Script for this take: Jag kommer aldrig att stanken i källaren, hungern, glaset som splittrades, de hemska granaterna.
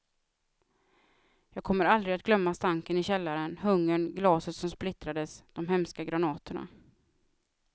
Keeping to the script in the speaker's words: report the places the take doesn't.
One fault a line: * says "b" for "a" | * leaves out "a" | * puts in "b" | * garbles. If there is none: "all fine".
* puts in "glömma"